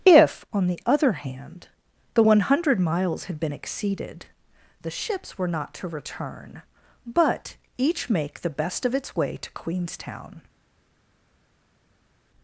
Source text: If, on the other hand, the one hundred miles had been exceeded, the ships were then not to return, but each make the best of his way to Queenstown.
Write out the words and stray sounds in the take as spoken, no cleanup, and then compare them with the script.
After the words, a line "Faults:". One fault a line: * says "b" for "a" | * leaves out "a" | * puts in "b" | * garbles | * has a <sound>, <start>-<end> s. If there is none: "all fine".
If, on the other hand, the one hundred miles had been exceeded, the ships were not to return, but each make the best of its way to Queenstown.
Faults:
* leaves out "then"
* says "its" for "his"